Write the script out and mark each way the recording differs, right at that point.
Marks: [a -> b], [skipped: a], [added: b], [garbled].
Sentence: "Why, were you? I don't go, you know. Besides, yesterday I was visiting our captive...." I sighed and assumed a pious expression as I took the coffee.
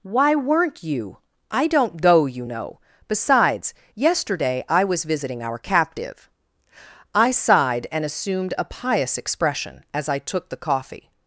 "Why, [were -> weren't] you? I don't go, you know. Besides, yesterday I was visiting our captive...." I sighed and assumed a pious expression as I took the coffee.